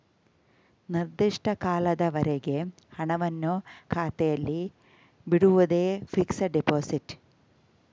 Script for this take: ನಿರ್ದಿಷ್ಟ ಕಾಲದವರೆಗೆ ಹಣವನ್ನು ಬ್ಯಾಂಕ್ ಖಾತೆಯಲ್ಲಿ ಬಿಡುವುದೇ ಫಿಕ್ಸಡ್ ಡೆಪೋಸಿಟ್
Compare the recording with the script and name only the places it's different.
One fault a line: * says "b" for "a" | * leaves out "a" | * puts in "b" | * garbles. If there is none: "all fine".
* leaves out "ಬ್ಯಾಂಕ್"